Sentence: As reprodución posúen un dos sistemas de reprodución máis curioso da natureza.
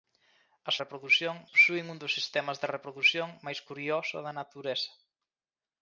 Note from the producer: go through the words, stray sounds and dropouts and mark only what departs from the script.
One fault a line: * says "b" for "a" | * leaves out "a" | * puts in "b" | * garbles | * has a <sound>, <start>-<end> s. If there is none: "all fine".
all fine